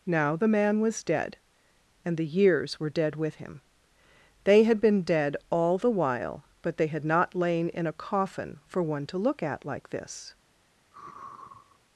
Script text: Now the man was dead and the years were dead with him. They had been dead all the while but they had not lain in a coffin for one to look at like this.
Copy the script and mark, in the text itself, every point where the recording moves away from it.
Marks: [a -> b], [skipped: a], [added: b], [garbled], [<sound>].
Now the man was dead and the years were dead with him. They had been dead all the while but they had not lain in a coffin for one to look at like this. [sigh]